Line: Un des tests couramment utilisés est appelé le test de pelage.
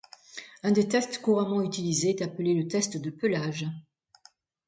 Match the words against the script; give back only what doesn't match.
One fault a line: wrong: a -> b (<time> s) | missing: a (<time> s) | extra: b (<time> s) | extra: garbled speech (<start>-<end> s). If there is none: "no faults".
no faults